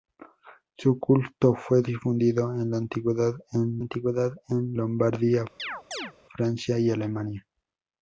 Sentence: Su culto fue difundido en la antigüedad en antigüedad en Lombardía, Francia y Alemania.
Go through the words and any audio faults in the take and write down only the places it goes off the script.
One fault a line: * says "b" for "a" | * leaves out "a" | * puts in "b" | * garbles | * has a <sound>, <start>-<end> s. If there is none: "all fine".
* has a chirp, 5.6-6.1 s